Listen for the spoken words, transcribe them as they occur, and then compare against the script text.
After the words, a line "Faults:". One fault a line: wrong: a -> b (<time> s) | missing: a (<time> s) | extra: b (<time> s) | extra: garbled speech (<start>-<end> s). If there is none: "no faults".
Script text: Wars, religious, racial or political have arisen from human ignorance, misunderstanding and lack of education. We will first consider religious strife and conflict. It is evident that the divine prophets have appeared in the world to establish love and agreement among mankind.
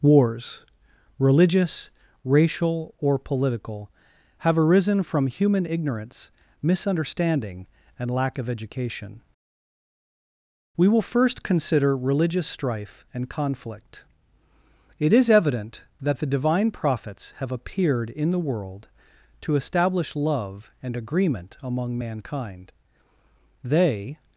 Wars, religious, racial or political have arisen from human ignorance, misunderstanding and lack of education. We will first consider religious strife and conflict. It is evident that the divine prophets have appeared in the world to establish love and agreement among mankind. They
Faults:
extra: They (23.6 s)